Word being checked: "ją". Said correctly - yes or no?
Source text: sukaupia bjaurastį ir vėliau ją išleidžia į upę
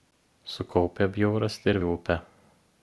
no